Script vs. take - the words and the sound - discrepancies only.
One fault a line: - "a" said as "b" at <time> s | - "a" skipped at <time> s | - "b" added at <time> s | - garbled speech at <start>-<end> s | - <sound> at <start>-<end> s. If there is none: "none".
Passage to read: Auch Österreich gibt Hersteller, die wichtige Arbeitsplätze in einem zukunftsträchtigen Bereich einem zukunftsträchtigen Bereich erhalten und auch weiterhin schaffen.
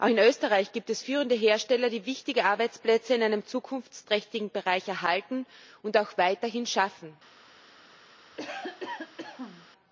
- "in" added at 0.1 s
- "es führende" added at 0.9 s
- "einem zukunftsträchtigen Bereich" skipped at 4.9 s
- cough at 8.3-9.7 s